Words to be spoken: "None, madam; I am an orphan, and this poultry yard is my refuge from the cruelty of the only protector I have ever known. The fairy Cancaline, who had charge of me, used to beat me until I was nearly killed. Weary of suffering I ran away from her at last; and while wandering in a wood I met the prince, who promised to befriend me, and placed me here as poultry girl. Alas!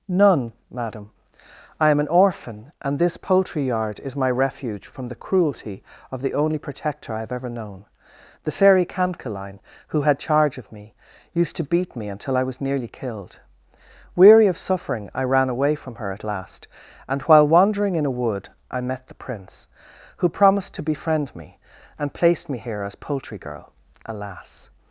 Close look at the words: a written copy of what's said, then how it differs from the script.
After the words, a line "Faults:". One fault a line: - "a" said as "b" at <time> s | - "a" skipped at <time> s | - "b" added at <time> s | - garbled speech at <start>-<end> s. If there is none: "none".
"None, madam; I am an orphan, and this poultry yard is my refuge from the cruelty of the only protector I have ever known. The fairy Cancaline, who had charge of me, used to beat me until I was nearly killed. Weary of suffering I ran away from her at last; and while wandering in a wood I met the prince, who promised to befriend me, and placed me here as poultry girl. Alas!
Faults:
none